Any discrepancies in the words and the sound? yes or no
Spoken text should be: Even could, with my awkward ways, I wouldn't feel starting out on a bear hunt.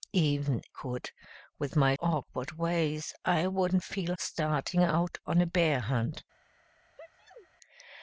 yes